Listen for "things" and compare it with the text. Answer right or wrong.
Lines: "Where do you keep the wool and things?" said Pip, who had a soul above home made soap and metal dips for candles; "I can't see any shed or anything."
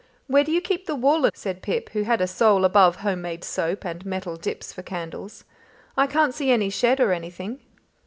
wrong